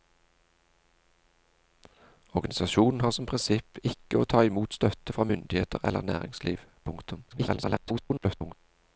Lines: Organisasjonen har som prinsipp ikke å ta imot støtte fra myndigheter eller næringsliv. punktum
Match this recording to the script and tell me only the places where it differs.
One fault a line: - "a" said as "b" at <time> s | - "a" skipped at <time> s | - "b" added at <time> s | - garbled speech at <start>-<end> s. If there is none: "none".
- garbled speech at 7.3-8.5 s